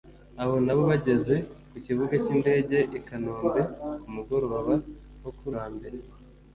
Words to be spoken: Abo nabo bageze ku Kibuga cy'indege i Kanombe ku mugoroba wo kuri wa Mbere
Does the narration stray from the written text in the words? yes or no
no